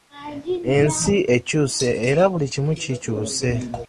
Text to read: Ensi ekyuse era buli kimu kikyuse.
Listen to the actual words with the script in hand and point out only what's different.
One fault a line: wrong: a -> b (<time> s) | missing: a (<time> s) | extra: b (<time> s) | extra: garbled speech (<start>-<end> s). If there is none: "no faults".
no faults